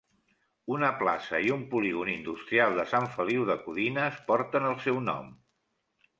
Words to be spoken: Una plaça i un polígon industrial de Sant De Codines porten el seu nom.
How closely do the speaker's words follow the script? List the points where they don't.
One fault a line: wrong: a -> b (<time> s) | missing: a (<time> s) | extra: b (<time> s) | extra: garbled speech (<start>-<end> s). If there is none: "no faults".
extra: Feliu (3.2 s)